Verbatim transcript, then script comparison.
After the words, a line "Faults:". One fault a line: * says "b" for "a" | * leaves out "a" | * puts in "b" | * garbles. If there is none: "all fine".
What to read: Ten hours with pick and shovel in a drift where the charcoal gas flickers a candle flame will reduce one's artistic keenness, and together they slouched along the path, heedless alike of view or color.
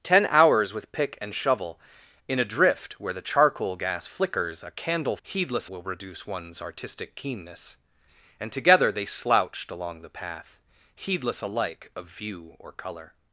Ten hours with pick and shovel in a drift where the charcoal gas flickers a candle heedless will reduce one's artistic keenness, and together they slouched along the path, heedless alike of view or color.
Faults:
* says "heedless" for "flame"